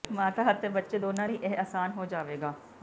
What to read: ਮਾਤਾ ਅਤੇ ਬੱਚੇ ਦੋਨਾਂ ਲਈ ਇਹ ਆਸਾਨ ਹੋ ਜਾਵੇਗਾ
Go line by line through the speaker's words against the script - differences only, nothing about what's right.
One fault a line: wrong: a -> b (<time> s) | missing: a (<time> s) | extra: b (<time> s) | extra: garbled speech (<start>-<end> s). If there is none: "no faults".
no faults